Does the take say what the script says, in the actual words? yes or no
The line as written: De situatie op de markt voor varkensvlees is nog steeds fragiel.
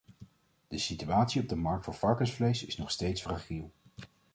yes